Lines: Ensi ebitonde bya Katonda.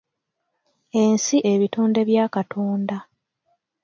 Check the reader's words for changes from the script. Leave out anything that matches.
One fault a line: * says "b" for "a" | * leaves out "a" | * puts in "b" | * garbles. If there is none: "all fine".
all fine